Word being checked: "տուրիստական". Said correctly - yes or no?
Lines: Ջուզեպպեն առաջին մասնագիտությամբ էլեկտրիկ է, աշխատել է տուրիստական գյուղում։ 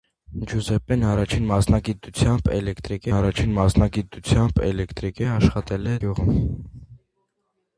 no